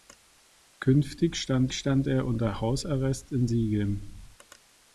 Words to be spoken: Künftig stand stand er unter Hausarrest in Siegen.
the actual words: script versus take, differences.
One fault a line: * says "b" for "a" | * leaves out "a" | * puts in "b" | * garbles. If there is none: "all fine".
all fine